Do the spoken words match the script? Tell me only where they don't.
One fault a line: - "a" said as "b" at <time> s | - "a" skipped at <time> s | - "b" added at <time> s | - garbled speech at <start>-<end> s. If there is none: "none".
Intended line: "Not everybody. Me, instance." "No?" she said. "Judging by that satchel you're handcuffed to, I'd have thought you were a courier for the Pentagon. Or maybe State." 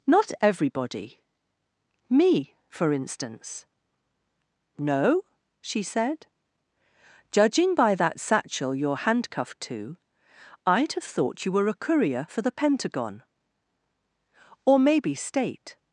- "for" added at 2.7 s